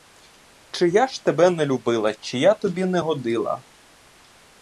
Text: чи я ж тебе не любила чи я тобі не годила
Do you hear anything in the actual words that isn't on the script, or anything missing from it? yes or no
no